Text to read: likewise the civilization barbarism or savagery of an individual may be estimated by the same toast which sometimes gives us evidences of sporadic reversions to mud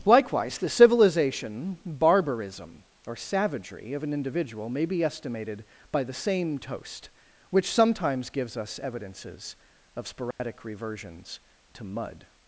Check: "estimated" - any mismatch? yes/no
no